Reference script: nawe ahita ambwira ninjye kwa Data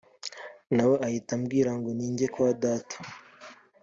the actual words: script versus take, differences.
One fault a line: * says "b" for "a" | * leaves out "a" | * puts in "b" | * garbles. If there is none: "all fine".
* puts in "ngo"